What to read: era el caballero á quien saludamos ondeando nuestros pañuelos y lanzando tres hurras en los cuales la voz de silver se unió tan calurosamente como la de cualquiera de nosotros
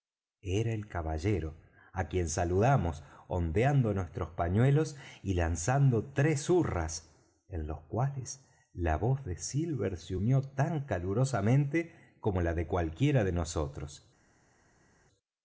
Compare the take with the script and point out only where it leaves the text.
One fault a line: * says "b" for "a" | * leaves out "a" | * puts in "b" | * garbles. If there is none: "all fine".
all fine